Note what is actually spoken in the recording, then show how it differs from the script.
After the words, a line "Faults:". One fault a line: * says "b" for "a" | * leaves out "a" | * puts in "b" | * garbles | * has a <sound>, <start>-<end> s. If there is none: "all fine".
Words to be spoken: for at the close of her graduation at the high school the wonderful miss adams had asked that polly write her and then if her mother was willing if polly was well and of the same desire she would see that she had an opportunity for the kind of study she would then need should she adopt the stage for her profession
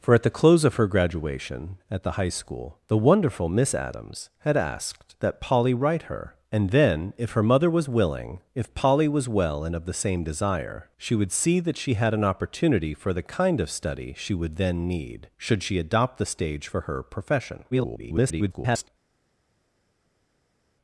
for at the close of her graduation at the high school the wonderful miss adams had asked that polly write her and then if her mother was willing if polly was well and of the same desire she would see that she had an opportunity for the kind of study she would then need should she adopt the stage for her profession [garbled]
Faults:
* garbles